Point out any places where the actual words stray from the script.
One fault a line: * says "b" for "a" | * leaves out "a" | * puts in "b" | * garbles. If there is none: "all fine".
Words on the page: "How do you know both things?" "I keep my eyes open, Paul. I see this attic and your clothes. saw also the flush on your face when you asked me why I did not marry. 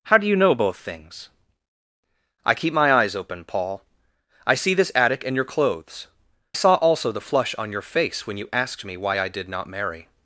all fine